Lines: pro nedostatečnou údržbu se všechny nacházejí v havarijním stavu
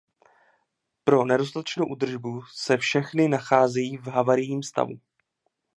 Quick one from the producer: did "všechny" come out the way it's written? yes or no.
yes